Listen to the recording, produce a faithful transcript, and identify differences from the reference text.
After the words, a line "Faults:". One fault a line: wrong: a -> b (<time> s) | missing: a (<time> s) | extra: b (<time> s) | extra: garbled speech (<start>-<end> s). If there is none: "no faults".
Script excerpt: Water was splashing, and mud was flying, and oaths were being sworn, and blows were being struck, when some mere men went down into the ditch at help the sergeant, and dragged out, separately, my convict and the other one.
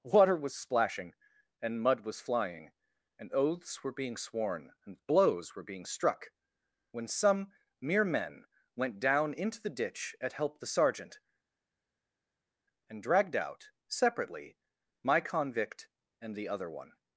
Water was splashing, and mud was flying, and oaths were being sworn, and blows were being struck, when some mere men went down into the ditch at help the sergeant, and dragged out, separately, my convict and the other one.
Faults:
no faults